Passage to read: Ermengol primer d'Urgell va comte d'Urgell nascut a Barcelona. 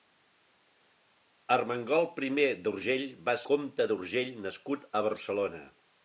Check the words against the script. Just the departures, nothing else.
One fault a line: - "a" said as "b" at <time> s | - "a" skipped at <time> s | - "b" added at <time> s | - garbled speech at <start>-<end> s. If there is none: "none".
none